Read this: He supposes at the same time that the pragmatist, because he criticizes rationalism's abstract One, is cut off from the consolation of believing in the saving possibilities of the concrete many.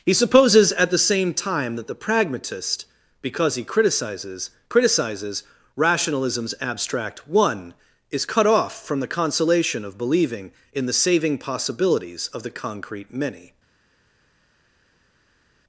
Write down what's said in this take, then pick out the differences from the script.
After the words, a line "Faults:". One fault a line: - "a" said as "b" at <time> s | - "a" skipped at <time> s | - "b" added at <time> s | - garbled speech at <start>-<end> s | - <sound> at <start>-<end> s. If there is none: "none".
He supposes at the same time that the pragmatist, because he criticizes criticizes rationalism's abstract One, is cut off from the consolation of believing in the saving possibilities of the concrete many.
Faults:
- "criticizes" added at 4.7 s